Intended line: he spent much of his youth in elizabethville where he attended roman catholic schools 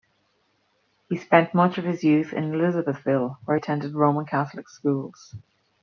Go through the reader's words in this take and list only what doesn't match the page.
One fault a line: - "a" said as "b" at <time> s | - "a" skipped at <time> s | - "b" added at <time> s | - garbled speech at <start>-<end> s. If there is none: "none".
- "he" skipped at 3.6 s